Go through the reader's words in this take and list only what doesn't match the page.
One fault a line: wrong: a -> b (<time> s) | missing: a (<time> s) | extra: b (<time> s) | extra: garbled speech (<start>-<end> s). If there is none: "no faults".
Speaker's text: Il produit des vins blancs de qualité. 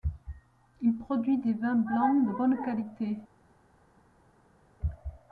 extra: bonne (2.3 s)